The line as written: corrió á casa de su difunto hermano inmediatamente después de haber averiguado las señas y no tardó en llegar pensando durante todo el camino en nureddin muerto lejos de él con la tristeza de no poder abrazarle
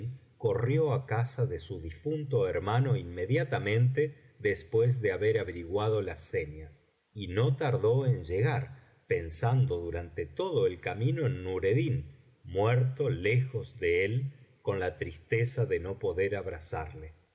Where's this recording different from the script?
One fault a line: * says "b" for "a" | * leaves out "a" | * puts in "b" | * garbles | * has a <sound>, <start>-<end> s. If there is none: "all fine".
all fine